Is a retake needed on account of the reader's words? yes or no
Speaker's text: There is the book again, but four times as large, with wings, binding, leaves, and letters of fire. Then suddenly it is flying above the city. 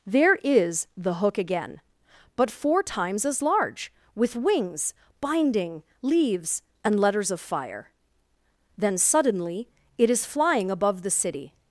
yes